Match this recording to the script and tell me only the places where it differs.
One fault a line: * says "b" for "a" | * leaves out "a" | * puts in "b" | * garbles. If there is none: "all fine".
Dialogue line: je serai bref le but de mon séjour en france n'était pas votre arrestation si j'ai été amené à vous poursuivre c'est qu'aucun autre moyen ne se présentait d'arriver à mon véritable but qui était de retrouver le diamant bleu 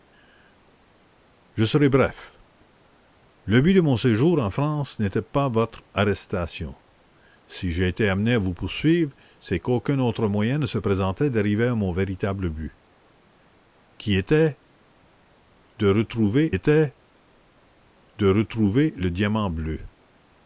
* puts in "était de retrouver"